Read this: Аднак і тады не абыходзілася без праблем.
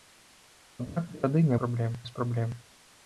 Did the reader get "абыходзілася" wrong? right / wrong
wrong